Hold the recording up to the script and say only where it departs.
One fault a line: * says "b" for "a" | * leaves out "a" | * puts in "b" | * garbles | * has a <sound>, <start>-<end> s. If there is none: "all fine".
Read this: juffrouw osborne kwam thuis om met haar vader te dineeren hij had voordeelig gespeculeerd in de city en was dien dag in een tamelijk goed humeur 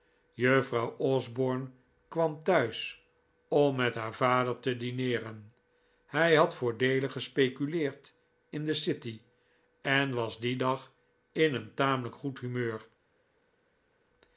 all fine